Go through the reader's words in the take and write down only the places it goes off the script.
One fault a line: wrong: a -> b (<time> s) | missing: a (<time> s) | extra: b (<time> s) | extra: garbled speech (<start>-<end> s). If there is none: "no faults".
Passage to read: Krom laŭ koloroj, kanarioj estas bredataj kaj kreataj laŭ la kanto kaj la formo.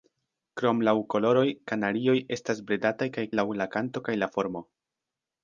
missing: kreataj (3.3 s)